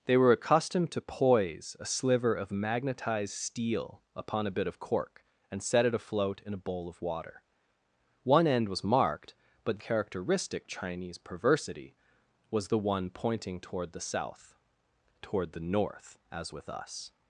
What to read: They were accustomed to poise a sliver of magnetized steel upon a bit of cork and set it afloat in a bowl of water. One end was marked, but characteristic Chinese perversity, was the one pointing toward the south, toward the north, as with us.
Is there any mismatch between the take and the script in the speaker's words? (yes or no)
no